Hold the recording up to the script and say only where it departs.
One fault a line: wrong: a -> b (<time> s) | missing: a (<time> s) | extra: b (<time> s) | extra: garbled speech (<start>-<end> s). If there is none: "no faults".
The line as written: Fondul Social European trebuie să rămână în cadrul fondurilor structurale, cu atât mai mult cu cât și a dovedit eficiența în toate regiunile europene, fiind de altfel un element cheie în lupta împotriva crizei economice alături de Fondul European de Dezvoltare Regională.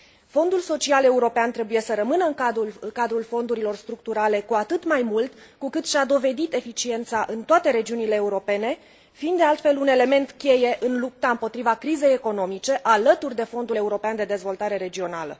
no faults